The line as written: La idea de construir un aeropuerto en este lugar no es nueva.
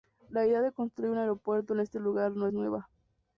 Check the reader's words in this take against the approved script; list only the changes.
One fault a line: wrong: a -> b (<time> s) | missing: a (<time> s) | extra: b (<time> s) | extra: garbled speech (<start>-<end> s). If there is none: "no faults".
no faults